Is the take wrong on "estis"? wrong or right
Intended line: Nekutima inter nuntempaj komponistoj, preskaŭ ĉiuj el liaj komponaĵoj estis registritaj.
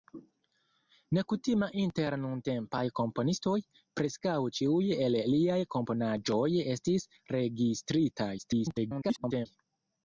right